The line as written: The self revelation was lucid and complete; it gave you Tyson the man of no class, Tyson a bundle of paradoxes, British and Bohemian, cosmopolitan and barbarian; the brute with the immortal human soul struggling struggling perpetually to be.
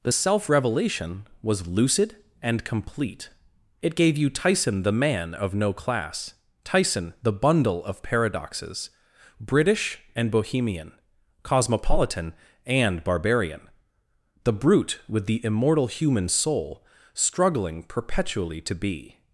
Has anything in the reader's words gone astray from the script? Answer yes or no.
yes